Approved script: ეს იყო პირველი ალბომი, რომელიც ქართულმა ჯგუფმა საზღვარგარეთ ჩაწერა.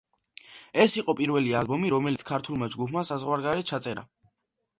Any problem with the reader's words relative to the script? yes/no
no